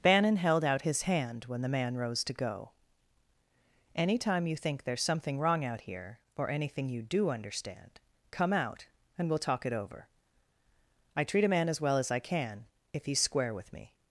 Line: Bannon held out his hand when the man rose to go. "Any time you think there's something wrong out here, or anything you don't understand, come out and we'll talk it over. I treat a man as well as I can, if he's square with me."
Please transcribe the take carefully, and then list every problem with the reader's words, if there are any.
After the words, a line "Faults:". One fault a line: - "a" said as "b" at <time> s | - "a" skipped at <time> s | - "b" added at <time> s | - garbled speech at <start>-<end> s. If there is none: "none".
Bannon held out his hand when the man rose to go. "Any time you think there's something wrong out here, or anything you do understand, come out and we'll talk it over. I treat a man as well as I can, if he's square with me."
Faults:
- "don't" said as "do" at 7.0 s